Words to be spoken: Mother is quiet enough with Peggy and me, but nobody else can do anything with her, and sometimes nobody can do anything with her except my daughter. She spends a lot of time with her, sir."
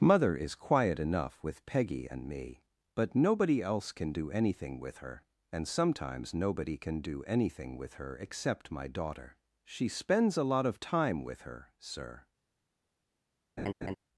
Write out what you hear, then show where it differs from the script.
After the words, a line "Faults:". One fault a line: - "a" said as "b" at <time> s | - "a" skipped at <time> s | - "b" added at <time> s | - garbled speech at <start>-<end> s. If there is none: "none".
Mother is quiet enough with Peggy and me, but nobody else can do anything with her, and sometimes nobody can do anything with her except my daughter. She spends a lot of time with her, sir."
Faults:
none